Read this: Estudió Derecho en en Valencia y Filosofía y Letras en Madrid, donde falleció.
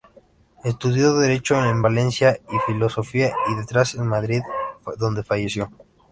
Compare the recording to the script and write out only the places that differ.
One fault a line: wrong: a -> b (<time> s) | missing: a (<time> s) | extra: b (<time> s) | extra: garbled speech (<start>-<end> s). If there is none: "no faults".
missing: en (1.8 s)